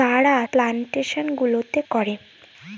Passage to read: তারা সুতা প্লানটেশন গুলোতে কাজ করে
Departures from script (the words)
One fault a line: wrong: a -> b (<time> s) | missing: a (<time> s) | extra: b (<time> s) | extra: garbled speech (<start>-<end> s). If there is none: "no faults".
missing: সুতা (0.3 s)
missing: কাজ (1.8 s)